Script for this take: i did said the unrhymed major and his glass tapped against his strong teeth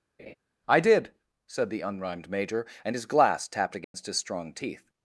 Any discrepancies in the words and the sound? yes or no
yes